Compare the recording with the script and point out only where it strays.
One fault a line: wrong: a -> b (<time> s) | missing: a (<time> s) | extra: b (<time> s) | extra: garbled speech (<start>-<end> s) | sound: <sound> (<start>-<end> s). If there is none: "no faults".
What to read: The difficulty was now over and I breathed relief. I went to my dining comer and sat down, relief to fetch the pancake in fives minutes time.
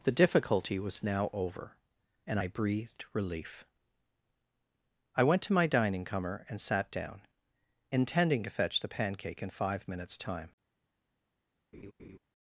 wrong: relief -> intending (7.9 s)
wrong: fives -> five (9.5 s)
sound: laugh (11.7-12.2 s)